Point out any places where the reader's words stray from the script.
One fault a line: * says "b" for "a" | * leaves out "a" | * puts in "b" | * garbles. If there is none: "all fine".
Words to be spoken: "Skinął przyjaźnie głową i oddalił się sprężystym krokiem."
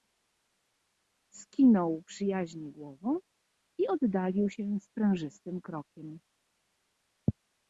all fine